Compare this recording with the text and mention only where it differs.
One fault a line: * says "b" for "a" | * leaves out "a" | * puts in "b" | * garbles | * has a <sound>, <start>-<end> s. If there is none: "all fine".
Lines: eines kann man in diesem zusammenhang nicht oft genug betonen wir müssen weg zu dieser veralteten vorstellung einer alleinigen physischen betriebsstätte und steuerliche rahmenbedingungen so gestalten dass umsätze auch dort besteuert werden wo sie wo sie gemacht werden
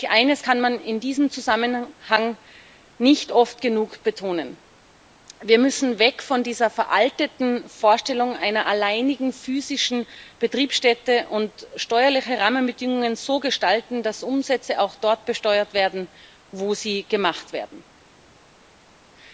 * says "von" for "zu"
* leaves out "wo sie"